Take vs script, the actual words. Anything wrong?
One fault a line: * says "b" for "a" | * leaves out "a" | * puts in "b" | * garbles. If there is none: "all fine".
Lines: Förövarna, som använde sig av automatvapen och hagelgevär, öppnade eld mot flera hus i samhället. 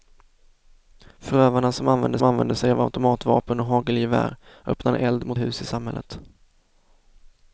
* puts in "använde"
* leaves out "flera"